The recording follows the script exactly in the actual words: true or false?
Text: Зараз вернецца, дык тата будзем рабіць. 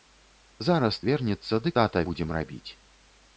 true